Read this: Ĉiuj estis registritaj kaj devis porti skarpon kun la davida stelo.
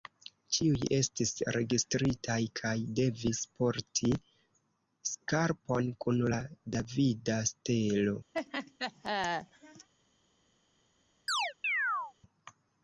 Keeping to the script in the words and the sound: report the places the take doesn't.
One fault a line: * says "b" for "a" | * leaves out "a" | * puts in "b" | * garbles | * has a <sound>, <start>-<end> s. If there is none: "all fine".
* has a laugh, 8.3-9.9 s
* has a chirp, 11.3-12.1 s